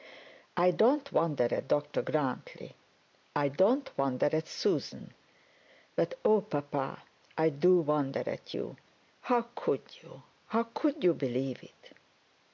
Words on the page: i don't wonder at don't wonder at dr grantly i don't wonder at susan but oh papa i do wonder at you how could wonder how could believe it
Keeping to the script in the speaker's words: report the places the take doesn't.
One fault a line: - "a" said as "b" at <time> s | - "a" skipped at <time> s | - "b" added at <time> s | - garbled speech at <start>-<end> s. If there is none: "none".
- "don't wonder at" skipped at 1.7 s
- "wonder" said as "you" at 10.0 s
- "you" added at 11.0 s